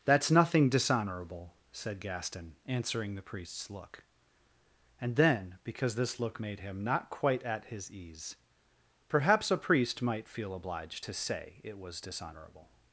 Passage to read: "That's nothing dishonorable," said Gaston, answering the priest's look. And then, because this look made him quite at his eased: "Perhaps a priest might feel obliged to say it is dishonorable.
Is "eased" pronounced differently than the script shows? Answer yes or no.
yes